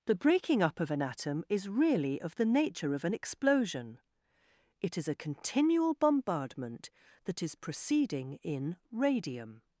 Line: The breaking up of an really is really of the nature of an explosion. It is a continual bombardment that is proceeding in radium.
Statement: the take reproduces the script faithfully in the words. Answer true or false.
false